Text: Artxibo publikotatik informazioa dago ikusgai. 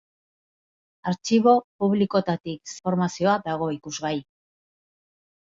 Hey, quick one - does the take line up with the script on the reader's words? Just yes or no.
yes